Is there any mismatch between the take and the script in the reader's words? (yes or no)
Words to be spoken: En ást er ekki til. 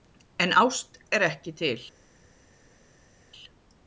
no